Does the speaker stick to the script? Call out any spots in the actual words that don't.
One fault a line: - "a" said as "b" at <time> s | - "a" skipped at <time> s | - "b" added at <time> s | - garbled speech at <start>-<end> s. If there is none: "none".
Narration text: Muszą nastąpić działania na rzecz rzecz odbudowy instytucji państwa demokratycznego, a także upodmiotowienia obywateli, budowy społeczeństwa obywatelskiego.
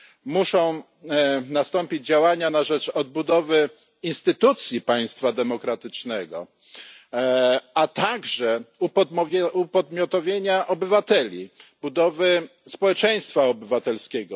- "rzecz" skipped at 2.9 s